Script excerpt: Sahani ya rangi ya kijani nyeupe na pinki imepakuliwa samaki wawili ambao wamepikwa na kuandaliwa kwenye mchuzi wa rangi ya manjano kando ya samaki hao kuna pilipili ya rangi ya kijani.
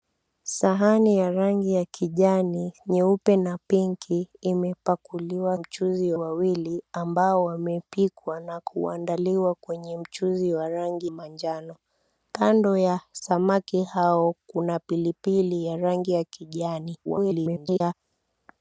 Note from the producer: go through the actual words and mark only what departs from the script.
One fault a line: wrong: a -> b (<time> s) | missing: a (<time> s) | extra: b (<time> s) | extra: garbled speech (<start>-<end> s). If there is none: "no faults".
wrong: samaki -> mchuzi (5.6 s)
missing: ya (11.1 s)
extra: garbled speech (17.0-17.9 s)